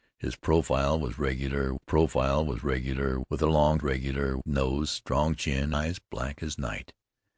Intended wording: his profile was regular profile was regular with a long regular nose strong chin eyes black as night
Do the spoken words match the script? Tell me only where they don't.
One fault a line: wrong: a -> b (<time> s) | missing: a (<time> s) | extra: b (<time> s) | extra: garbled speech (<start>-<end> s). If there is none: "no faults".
no faults